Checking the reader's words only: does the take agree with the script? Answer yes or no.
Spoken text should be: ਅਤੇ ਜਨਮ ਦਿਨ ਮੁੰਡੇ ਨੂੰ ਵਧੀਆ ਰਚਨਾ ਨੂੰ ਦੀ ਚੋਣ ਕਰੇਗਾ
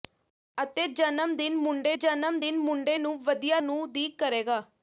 no